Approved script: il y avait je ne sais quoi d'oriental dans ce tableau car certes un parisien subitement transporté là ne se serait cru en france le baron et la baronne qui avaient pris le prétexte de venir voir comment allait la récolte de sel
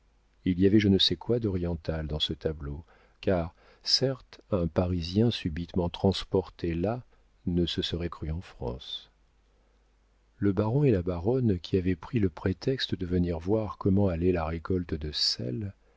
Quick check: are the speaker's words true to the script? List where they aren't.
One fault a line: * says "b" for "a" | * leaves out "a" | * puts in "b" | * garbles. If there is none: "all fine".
all fine